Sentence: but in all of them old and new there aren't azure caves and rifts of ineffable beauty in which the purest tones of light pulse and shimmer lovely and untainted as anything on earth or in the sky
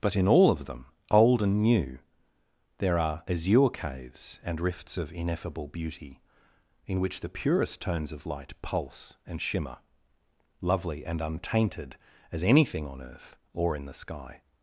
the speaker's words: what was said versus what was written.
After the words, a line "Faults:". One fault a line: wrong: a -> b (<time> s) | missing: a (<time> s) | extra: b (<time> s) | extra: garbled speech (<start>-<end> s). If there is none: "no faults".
but in all of them old and new there are azure caves and rifts of ineffable beauty in which the purest tones of light pulse and shimmer lovely and untainted as anything on earth or in the sky
Faults:
wrong: aren't -> are (3.0 s)